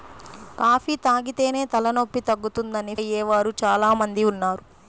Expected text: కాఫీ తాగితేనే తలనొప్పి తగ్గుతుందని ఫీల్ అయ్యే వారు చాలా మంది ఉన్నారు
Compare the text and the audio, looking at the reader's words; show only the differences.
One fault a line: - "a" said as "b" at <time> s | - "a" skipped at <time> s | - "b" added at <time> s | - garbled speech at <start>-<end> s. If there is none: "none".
- "ఫీల్" skipped at 3.0 s